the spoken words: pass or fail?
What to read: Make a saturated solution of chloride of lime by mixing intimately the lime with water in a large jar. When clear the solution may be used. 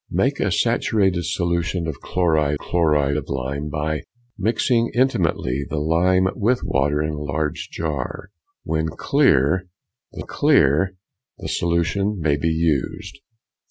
fail